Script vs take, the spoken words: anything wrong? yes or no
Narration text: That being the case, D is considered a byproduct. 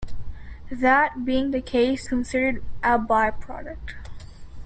yes